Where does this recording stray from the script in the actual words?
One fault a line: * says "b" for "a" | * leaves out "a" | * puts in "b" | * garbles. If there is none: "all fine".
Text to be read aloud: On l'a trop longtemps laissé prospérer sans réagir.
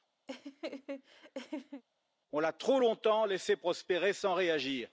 all fine